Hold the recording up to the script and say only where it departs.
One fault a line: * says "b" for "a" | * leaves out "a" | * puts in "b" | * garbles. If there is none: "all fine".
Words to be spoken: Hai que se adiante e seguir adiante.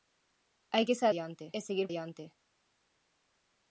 all fine